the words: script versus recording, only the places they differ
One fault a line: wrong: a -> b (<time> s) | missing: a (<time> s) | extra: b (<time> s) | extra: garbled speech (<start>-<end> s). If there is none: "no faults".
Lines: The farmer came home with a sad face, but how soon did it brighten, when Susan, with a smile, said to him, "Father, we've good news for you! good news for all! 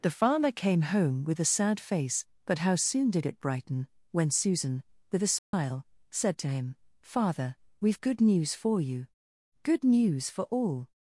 no faults